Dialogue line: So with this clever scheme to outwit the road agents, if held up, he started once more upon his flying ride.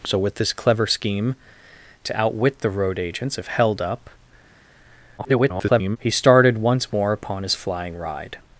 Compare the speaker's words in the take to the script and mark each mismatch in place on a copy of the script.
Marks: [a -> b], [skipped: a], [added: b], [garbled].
So with this clever scheme to outwit the road agents, if held up, [garbled] he started once more upon his flying ride.